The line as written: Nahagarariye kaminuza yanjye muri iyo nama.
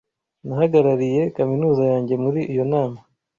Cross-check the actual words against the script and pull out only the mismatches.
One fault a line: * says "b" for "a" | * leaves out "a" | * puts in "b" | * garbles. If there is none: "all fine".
all fine